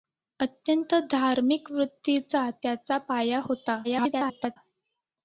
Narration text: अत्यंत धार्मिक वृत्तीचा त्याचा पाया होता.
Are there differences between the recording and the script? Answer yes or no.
yes